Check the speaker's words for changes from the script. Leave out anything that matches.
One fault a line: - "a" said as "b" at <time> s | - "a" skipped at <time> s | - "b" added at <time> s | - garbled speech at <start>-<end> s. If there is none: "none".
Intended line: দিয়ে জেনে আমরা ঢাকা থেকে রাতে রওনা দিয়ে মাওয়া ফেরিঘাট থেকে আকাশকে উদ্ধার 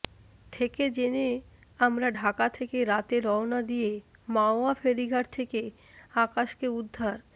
- "দিয়ে" said as "থেকে" at 0.5 s